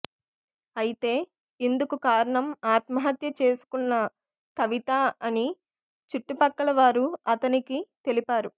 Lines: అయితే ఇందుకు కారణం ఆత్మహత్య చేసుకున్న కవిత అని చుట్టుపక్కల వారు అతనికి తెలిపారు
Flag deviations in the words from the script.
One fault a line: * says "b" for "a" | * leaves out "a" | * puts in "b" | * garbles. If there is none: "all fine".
all fine